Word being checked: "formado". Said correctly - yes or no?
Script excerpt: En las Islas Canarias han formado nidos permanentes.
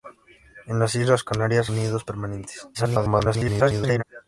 no